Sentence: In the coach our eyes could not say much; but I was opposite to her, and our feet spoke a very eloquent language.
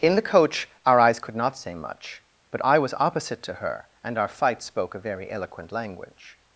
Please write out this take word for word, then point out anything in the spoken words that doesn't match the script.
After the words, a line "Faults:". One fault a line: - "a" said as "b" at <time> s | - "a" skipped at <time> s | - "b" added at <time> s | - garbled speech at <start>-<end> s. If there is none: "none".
In the coach our eyes could not say much; but I was opposite to her, and our fight spoke a very eloquent language.
Faults:
- "feet" said as "fight" at 4.3 s